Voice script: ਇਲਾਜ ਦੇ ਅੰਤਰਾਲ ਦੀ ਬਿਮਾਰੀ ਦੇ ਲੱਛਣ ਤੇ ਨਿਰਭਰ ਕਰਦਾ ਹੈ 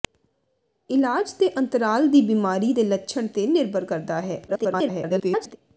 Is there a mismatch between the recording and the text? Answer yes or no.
yes